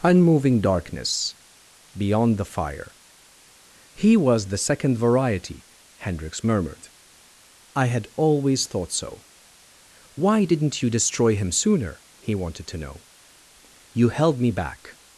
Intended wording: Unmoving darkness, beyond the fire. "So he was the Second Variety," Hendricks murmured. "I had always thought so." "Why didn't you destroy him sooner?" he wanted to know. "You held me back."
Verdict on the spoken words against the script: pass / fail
fail